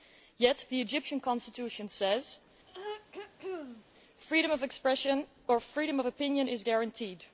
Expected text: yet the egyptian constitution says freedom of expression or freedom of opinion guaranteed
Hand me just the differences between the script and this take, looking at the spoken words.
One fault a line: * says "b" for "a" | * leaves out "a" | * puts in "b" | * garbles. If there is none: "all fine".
* puts in "is"